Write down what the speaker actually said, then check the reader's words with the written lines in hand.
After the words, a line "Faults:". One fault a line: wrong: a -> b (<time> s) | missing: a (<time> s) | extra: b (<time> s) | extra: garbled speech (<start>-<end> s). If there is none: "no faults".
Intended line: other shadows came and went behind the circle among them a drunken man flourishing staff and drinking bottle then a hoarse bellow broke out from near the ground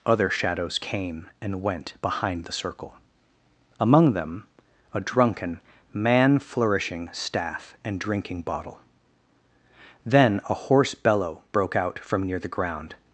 other shadows came and went behind the circle among them a drunken man flourishing staff and drinking bottle then a hoarse bellow broke out from near the ground
Faults:
no faults